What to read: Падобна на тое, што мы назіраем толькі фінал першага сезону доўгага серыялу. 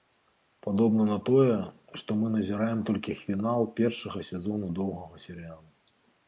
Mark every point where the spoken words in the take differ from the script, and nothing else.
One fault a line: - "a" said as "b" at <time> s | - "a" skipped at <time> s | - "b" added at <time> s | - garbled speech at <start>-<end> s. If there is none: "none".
none